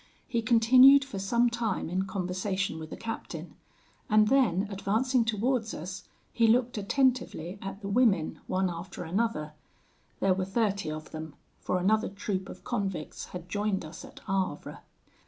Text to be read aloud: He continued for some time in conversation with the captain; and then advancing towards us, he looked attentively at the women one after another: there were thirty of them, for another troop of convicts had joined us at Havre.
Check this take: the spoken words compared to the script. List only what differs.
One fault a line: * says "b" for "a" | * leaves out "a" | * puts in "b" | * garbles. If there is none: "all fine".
all fine